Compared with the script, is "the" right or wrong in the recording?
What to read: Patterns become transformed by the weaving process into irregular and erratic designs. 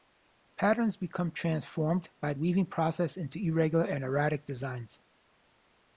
wrong